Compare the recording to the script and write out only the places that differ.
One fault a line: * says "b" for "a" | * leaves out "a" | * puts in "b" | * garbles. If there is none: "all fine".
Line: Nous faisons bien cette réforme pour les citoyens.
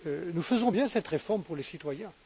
all fine